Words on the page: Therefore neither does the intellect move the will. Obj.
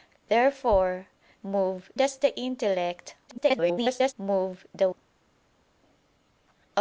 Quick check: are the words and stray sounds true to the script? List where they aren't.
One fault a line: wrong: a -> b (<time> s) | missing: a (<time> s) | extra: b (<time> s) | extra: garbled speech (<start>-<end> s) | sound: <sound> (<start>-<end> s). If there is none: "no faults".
wrong: neither -> move (1.4 s)
extra: garbled speech (3.3-4.1 s)
missing: will (4.9 s)